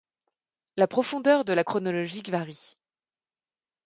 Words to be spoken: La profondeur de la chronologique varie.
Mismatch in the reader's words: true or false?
false